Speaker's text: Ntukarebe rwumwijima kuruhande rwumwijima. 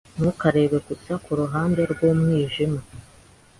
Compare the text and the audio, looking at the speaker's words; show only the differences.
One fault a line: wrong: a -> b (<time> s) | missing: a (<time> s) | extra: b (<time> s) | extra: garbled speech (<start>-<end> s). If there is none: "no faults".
wrong: rwumwijima -> gusa (0.9 s)